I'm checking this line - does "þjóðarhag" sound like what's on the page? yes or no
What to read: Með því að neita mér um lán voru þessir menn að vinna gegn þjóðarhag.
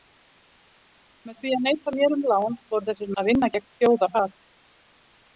yes